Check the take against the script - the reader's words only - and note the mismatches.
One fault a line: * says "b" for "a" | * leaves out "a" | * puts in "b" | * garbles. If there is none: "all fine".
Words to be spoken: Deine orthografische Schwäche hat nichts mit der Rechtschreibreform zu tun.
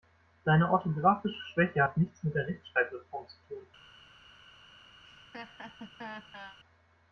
all fine